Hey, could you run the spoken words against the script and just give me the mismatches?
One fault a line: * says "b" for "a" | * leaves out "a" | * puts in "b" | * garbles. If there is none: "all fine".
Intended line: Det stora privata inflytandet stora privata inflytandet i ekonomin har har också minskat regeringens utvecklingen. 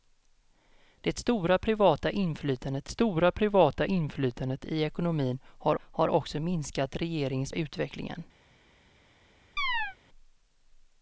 all fine